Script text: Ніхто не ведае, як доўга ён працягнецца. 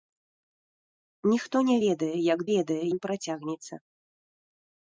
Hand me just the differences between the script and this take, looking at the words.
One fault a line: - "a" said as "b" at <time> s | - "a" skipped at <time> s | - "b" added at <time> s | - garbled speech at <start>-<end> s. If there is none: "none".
- "доўга" said as "ведае" at 2.5 s